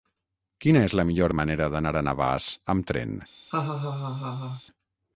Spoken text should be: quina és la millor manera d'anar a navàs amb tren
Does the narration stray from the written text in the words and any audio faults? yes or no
yes